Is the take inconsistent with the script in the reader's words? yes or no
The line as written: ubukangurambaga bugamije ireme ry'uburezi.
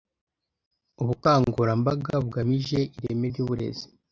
no